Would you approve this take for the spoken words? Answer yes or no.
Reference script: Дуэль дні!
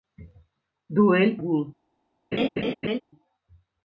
yes